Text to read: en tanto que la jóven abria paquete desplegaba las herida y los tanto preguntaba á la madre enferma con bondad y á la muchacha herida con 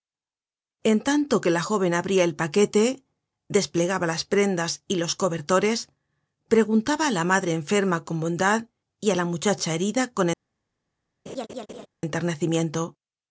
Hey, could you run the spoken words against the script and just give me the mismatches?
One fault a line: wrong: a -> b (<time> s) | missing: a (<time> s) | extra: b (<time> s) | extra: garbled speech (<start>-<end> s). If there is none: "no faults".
extra: el (2.2 s)
wrong: herida -> prendas (4.2 s)
wrong: tanto -> cobertores (5.2 s)